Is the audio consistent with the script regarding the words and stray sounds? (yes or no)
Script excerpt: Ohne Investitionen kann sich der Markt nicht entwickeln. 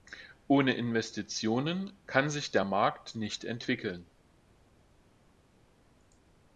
yes